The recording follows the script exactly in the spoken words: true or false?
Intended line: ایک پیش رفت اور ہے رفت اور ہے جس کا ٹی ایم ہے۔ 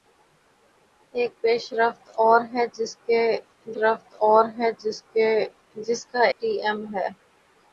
true